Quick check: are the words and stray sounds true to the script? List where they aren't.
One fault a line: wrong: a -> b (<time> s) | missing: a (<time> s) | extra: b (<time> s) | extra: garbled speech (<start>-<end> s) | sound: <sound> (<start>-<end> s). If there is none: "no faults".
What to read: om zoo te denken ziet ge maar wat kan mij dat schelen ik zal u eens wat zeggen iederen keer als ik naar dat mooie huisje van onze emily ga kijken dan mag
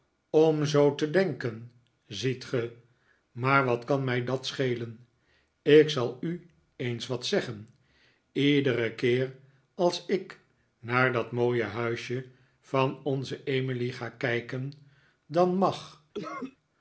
sound: cough (16.1-16.6 s)